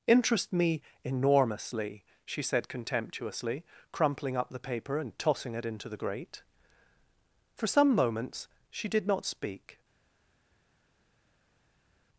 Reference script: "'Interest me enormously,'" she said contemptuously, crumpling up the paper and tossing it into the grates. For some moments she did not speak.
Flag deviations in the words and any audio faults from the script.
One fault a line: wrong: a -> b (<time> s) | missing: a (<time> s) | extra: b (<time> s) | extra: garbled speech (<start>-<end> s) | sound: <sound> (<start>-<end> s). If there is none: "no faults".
wrong: grates -> grate (6.0 s)